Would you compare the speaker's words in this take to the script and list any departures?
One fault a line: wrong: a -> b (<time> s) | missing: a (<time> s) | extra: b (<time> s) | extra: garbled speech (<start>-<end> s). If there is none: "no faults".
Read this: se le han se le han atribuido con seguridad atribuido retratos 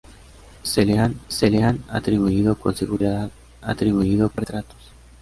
no faults